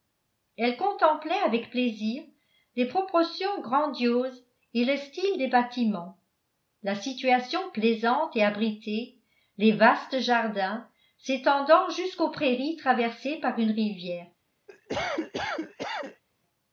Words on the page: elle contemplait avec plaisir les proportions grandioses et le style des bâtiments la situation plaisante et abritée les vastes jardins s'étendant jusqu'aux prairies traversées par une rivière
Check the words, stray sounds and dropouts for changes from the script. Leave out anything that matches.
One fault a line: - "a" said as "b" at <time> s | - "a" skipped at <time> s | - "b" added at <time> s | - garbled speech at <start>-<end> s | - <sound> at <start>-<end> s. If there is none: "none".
- cough at 14.7-16.2 s